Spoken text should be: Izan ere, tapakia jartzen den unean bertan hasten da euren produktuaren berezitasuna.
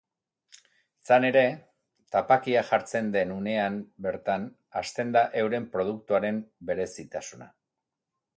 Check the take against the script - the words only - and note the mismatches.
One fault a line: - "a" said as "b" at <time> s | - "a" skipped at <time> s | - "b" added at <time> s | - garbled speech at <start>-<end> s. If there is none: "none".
none